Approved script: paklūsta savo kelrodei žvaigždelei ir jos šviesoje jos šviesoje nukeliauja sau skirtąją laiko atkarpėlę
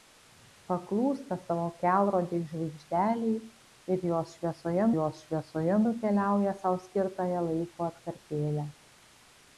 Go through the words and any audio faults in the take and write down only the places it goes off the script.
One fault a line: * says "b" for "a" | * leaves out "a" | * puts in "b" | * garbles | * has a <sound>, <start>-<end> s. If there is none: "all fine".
all fine